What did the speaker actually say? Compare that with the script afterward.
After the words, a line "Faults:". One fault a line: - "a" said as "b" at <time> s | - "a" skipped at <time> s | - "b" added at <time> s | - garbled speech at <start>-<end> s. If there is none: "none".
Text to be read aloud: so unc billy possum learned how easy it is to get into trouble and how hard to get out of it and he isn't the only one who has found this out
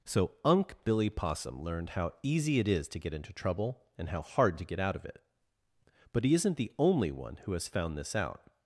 so unc billy possum learned how easy it is to get into trouble and how hard to get out of it but he isn't the only one who has found this out
Faults:
- "and" said as "but" at 6.1 s